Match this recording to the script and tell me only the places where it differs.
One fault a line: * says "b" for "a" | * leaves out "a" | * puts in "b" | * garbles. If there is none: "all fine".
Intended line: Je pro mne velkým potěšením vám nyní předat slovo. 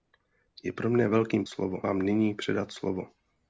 * says "slovo" for "potěšením"